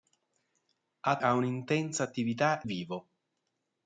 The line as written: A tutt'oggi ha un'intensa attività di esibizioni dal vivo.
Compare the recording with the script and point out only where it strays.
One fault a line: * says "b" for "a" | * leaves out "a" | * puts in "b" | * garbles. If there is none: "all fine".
* leaves out "tutt'oggi"
* leaves out "di esibizioni dal"